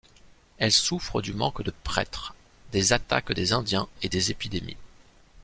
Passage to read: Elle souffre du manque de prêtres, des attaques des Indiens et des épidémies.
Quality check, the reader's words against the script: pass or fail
pass